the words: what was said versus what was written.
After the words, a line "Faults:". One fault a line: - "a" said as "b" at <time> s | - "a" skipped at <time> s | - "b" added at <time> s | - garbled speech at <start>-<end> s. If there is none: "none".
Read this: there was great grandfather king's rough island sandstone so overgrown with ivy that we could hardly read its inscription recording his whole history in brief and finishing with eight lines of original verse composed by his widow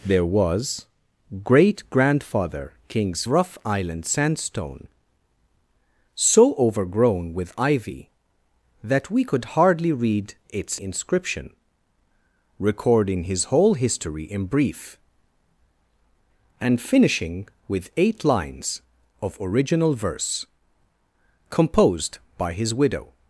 there was great grandfather king's rough island sandstone so overgrown with ivy that we could hardly read its inscription recording his whole history in brief and finishing with eight lines of original verse composed by his widow
Faults:
none